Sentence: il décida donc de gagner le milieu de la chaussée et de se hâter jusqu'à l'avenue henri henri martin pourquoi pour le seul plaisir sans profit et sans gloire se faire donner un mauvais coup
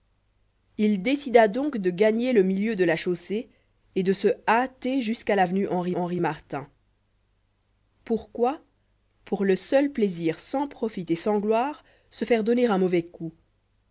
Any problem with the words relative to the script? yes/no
no